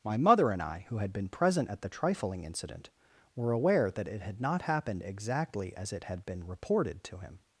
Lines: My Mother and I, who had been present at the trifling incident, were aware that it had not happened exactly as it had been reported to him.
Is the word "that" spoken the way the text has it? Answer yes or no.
yes